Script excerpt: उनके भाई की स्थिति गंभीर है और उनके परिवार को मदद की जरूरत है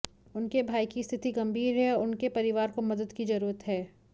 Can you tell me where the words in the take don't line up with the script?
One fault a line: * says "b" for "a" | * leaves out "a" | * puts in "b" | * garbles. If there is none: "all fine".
all fine